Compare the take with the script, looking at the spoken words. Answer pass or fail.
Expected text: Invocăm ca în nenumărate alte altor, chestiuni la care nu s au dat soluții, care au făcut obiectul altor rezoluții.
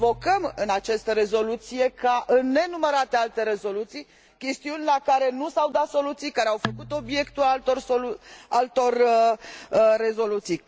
fail